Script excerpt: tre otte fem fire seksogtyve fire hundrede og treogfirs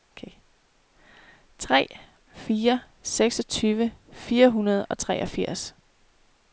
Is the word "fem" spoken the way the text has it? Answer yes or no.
no